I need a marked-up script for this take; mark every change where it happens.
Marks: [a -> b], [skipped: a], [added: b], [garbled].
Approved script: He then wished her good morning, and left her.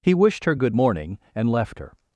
He [skipped: then] wished her good morning, and left her.